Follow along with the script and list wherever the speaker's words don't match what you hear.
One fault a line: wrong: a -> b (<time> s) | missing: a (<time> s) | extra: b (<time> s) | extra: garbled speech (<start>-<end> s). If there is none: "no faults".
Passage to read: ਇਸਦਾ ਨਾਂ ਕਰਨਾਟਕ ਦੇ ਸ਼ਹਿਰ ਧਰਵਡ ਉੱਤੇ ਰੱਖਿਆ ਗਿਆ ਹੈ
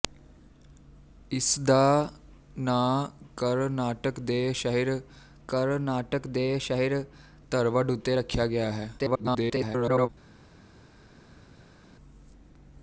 extra: ਕਰਨਾਟਕ ਦੇ ਸ਼ਹਿਰ (5.5 s)
extra: garbled speech (9.0-10.1 s)